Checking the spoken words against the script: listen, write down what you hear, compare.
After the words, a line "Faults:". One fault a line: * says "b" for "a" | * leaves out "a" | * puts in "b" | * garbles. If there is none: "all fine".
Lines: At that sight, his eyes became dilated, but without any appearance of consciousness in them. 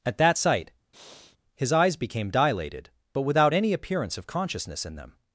At that sight, his eyes became dilated, but without any appearance of consciousness in them.
Faults:
all fine